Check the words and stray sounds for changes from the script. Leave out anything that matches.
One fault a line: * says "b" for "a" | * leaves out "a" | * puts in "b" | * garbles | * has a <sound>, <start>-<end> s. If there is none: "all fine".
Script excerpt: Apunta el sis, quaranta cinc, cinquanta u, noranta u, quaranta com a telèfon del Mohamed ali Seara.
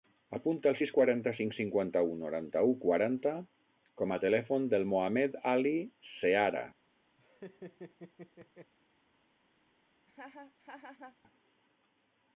* has a laugh, 7.2-8.7 s
* has a laugh, 10.1-11.2 s